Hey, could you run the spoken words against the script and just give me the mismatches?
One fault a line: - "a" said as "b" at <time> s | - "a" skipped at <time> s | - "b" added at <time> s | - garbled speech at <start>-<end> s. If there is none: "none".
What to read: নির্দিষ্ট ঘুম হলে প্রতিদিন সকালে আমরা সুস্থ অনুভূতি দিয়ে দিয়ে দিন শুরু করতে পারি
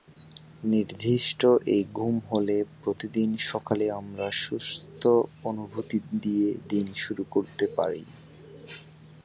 - "এই" added at 1.7 s
- "দিয়ে" skipped at 6.5 s